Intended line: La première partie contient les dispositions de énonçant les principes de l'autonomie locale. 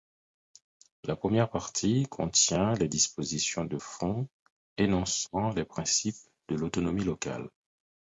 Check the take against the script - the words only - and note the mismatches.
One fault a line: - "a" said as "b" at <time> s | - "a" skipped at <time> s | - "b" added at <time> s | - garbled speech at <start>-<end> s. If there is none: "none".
- "fond" added at 3.7 s